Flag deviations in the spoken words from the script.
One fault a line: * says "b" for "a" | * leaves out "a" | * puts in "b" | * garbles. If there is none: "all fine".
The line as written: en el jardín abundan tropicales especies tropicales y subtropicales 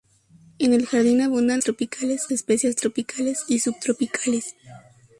all fine